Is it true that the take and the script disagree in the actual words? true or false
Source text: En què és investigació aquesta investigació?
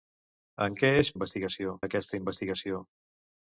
false